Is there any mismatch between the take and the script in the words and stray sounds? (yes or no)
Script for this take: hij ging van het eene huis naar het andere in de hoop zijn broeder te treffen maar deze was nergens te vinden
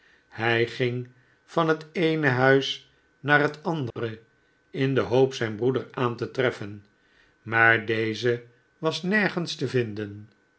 yes